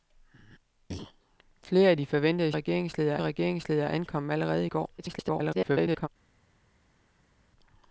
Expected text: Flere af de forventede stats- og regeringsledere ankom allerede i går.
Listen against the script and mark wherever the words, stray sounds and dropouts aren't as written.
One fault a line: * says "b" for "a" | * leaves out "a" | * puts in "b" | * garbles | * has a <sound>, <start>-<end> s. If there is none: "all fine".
* says "regeringsledere" for "stats"
* garbles